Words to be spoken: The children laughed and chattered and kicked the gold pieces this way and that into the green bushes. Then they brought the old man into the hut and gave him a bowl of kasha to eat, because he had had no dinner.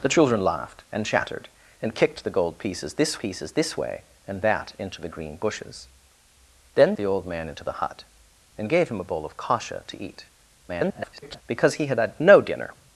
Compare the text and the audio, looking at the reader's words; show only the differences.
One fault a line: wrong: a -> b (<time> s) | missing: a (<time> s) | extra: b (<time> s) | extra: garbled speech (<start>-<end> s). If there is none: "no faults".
extra: pieces this (3.2 s)
missing: they brought (6.9 s)
extra: garbled speech (10.7-11.4 s)